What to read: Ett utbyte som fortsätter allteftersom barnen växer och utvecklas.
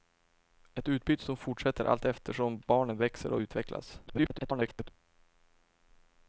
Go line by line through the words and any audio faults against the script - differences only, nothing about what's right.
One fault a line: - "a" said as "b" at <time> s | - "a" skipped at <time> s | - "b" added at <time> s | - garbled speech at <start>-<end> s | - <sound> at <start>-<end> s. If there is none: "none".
- garbled speech at 4.1-4.9 s